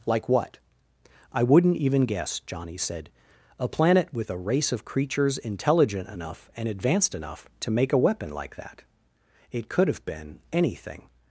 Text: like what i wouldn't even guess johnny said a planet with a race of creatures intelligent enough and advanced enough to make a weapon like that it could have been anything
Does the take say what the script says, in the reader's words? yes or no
yes